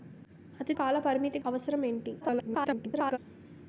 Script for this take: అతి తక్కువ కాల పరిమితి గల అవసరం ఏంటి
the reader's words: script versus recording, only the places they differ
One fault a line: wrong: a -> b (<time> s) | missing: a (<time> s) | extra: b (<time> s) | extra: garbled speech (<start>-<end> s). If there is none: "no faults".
missing: తక్కువ (0.7 s)
missing: గల (1.4 s)
extra: garbled speech (2.2-3.2 s)